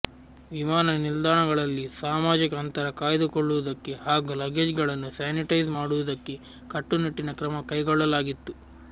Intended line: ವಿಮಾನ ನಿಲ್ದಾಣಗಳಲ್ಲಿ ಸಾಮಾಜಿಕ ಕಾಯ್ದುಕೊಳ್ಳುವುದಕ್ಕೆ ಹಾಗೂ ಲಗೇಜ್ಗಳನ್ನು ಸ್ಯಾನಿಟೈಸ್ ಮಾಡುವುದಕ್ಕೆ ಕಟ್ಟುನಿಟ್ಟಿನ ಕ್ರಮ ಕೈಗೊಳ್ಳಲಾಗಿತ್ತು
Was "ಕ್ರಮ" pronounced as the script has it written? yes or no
yes